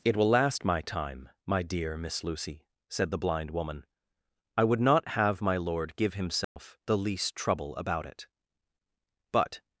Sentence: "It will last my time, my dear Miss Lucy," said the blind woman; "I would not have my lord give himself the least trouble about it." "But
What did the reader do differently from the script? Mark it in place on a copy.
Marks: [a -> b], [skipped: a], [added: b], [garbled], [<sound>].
"It will last my time, my dear Miss Lucy," said the blind woman; "I would not have my lord give himself [dropout] the least trouble about it." "But